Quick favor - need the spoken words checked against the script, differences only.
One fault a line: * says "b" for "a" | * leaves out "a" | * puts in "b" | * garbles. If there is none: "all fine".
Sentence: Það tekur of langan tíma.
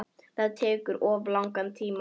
all fine